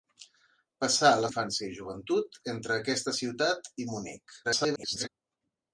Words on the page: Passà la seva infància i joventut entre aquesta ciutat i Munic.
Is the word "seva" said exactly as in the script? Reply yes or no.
no